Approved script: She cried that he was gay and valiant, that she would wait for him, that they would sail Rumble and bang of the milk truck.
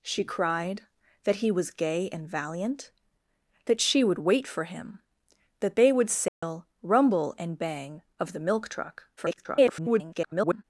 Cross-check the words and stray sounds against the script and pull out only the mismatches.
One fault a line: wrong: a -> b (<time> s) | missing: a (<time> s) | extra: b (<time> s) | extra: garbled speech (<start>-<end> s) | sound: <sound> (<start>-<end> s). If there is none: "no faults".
sound: dropout (6.3-6.4 s)
extra: garbled speech (9.2-10.6 s)